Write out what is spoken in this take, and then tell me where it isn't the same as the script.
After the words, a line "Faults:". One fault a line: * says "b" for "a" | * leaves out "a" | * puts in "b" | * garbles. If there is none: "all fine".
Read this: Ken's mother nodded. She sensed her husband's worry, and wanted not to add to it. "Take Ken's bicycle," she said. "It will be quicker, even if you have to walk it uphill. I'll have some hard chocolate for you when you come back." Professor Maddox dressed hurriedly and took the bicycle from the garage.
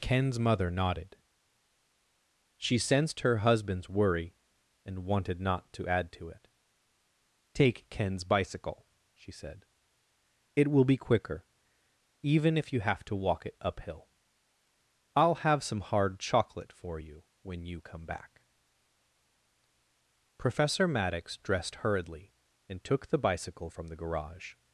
Ken's mother nodded. She sensed her husband's worry, and wanted not to add to it. "Take Ken's bicycle," she said. "It will be quicker, even if you have to walk it uphill. I'll have some hard chocolate for you when you come back." Professor Maddox dressed hurriedly and took the bicycle from the garage.
Faults:
all fine